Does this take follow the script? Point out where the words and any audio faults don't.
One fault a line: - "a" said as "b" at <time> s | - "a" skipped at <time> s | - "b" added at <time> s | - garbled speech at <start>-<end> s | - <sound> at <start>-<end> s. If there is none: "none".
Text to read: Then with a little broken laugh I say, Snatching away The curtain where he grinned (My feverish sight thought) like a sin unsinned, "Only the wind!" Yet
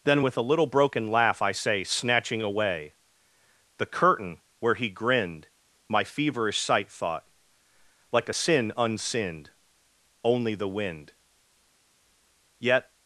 none